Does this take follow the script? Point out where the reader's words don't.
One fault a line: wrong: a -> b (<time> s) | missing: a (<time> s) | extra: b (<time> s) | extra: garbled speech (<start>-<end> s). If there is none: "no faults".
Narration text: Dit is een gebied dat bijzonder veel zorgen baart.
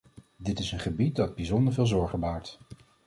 no faults